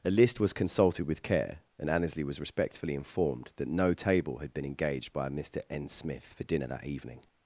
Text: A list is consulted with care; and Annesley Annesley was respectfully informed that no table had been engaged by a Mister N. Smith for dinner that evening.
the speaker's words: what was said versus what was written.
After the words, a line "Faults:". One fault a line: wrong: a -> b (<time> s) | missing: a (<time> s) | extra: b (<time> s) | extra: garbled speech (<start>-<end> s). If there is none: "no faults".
A list was consulted with care; and Annesley was respectfully informed that no table had been engaged by a Mister N. Smith for dinner that evening.
Faults:
wrong: is -> was (0.4 s)
missing: Annesley (2.2 s)